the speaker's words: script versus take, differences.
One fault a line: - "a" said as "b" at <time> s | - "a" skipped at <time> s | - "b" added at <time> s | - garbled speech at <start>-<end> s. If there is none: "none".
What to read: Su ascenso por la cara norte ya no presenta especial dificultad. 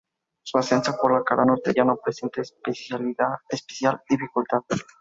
none